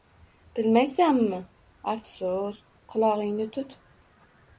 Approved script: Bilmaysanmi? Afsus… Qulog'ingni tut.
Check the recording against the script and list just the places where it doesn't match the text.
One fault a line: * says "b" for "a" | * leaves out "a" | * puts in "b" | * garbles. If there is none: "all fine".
all fine